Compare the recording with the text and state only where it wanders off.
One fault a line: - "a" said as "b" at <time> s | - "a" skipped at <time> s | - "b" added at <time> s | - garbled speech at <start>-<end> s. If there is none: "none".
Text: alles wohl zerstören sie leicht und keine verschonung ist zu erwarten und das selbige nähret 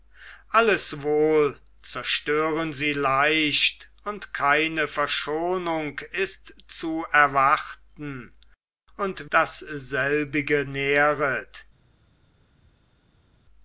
none